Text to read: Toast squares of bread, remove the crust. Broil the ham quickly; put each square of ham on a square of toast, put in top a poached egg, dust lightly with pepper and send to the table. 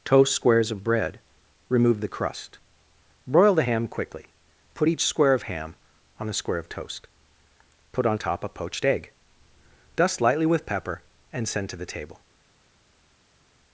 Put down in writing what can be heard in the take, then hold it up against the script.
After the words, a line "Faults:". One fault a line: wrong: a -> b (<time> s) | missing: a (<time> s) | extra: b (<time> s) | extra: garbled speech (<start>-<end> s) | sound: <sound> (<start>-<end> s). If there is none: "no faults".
Toast squares of bread, remove the crust. Broil the ham quickly; put each square of ham on a square of toast, put on top a poached egg, dust lightly with pepper and send to the table.
Faults:
wrong: in -> on (8.1 s)